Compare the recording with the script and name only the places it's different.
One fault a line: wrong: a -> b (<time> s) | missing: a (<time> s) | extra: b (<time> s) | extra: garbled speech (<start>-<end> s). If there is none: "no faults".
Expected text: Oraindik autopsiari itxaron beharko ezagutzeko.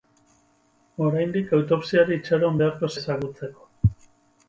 no faults